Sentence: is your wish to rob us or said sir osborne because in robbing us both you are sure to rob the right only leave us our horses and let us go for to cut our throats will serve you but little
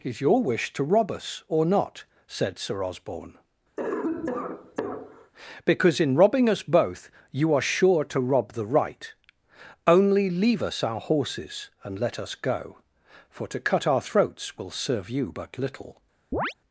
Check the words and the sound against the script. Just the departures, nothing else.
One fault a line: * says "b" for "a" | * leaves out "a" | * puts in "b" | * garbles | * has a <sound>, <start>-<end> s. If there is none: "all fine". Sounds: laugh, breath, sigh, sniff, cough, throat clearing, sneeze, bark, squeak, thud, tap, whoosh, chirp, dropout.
* puts in "not"
* has a cough, 3.8-5.3 s
* has a chirp, 16.3-16.5 s